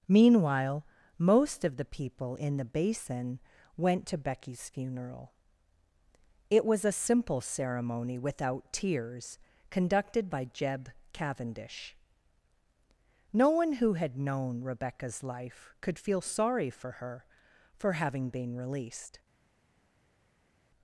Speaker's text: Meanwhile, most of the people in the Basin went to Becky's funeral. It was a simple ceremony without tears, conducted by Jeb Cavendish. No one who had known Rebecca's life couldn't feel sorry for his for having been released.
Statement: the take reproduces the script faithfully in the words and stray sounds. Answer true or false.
false